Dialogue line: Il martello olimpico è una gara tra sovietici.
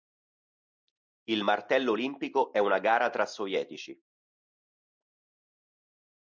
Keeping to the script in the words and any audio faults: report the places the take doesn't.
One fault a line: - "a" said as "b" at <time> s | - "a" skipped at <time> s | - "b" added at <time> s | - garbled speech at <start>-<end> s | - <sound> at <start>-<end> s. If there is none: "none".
none